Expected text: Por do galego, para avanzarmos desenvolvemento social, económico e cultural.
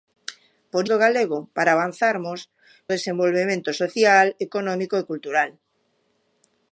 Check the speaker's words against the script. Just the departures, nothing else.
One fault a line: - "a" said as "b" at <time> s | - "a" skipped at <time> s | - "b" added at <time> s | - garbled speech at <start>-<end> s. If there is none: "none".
none